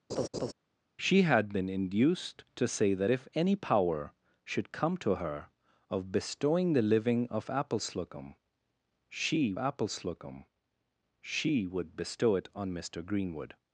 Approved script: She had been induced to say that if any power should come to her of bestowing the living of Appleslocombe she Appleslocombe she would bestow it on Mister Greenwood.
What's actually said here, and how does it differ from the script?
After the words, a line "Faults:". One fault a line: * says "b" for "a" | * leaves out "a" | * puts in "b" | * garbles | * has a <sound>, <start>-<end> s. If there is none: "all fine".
She had been induced to say that if any power should come to her of bestowing the living of Appleslocombe she Appleslocombe she would bestow it on Mister Greenwood.
Faults:
* has a laugh, 0.1-0.5 s